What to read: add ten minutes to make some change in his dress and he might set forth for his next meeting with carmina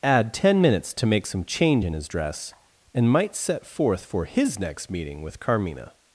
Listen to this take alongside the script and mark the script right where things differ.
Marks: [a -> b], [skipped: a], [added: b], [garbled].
add ten minutes to make some change in his dress and [skipped: he] might set forth for his next meeting with carmina